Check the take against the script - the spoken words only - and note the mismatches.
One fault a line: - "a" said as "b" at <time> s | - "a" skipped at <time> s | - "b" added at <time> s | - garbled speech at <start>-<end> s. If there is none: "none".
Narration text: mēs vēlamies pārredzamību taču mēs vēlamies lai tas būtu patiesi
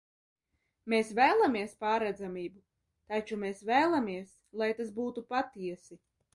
none